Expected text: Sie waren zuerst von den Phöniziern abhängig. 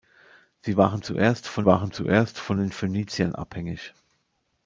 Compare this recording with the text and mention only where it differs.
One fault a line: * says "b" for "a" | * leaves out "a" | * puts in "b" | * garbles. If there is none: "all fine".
* puts in "waren zuerst von"